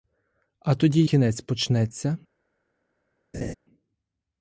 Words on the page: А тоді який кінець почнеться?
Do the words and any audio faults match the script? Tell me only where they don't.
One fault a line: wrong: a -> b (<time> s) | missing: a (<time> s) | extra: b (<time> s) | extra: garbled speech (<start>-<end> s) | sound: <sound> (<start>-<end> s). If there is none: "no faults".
missing: який (1.1 s)
sound: laugh (3.3-3.5 s)